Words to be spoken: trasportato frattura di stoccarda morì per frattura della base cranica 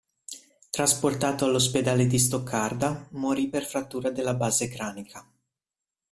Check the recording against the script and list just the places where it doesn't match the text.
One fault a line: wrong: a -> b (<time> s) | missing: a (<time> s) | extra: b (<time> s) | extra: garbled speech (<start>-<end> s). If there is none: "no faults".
wrong: frattura -> all'ospedale (1.4 s)